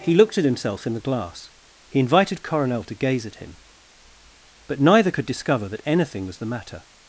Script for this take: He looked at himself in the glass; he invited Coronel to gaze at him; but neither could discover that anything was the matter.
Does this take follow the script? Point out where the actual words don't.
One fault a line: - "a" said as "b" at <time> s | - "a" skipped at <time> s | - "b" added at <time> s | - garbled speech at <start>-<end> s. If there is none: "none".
none